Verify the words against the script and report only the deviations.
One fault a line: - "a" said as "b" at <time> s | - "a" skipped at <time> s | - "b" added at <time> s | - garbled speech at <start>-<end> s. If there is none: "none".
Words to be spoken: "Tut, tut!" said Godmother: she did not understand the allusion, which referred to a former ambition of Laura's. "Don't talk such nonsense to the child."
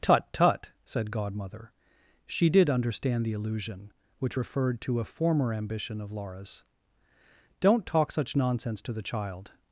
- "not" skipped at 2.7 s